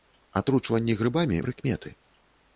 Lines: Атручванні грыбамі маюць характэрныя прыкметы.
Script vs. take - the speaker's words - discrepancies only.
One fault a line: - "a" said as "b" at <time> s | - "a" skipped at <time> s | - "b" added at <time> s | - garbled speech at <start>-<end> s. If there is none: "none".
- "маюць характэрныя" skipped at 1.4 s